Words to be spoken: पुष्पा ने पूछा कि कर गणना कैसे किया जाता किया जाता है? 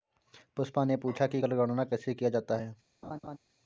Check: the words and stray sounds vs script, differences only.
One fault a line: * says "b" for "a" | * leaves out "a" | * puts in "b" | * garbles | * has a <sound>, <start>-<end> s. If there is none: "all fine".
* leaves out "किया जाता"
* has a laugh, 3.0-3.4 s